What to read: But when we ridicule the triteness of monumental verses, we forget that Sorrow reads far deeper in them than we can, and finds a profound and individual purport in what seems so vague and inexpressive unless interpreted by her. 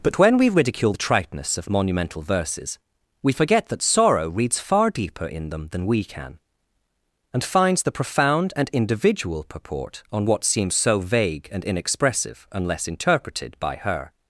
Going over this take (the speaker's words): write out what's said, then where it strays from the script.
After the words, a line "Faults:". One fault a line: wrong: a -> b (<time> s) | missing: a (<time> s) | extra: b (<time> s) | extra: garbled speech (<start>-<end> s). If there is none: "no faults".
But when we ridicule the triteness of monumental verses, we forget that Sorrow reads far deeper in them than we can, and finds the profound and individual purport on what seems so vague and inexpressive unless interpreted by her.
Faults:
wrong: a -> the (7.8 s)
wrong: in -> on (10.1 s)